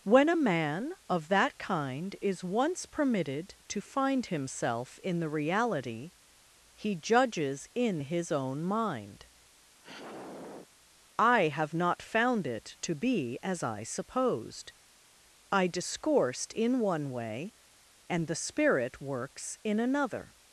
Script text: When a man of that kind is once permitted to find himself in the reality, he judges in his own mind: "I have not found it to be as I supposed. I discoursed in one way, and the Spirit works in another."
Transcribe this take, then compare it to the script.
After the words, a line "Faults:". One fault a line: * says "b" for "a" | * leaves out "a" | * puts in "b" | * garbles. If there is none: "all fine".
When a man of that kind is once permitted to find himself in the reality, he judges in his own mind: "I have not found it to be as I supposed. I discoursed in one way, and the Spirit works in another."
Faults:
all fine